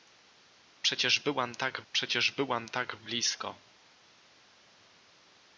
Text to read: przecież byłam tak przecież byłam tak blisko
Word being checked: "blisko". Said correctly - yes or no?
yes